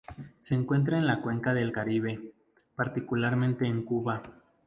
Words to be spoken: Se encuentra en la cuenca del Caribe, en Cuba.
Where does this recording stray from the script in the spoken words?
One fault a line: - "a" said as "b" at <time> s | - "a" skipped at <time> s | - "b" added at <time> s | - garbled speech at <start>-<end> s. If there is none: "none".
- "particularmente" added at 2.7 s